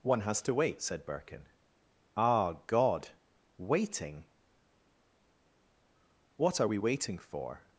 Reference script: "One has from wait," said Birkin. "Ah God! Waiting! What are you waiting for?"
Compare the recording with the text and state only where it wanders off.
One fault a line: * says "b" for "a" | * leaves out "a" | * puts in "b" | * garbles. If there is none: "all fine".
* says "to" for "from"
* says "we" for "you"